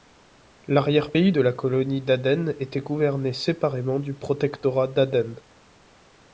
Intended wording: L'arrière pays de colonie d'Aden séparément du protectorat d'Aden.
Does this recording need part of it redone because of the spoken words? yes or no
yes